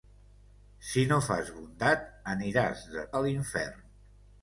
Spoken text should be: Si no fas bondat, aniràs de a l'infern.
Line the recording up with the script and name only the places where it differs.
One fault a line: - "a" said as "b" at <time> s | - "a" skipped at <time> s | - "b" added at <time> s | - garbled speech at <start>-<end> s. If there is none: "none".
none